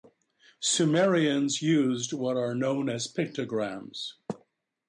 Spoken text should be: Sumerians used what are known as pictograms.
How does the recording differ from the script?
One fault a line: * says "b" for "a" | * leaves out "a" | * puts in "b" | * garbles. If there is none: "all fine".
all fine